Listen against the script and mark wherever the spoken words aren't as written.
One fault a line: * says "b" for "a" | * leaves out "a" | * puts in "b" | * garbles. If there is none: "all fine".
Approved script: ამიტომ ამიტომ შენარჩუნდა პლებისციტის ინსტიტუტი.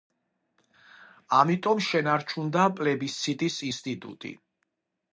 * leaves out "ამიტომ"